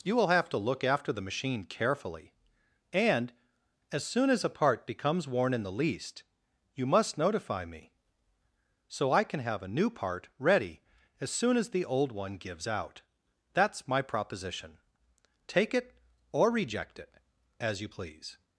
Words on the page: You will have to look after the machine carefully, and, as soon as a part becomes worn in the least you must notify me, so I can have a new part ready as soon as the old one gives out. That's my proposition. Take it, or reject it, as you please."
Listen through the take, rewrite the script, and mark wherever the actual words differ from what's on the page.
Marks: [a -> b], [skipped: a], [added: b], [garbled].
You will have to look after the machine carefully, and, as soon as a part becomes worn in the least you must notify me, so I can have a new part ready as soon as the old one gives out. That's my proposition. Take it, or reject it, as you please."